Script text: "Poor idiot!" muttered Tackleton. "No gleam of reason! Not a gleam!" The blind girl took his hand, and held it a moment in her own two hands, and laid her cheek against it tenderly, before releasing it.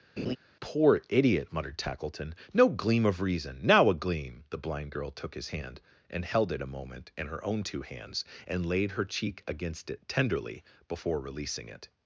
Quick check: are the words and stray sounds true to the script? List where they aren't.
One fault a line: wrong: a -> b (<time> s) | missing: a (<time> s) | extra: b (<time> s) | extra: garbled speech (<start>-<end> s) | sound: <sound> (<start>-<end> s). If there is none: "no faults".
sound: laugh (0.2-0.4 s)
wrong: Not -> Now (3.6 s)